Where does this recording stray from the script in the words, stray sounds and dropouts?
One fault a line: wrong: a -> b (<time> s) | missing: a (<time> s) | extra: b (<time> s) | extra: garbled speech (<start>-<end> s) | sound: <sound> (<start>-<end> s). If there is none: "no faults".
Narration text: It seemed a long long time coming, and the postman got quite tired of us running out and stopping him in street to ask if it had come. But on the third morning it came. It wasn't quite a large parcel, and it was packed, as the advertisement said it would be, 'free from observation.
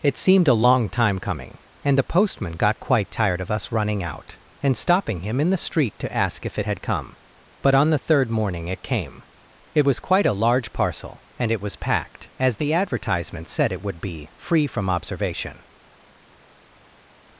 missing: long (0.9 s)
extra: the (5.5 s)
wrong: wasn't -> was (9.9 s)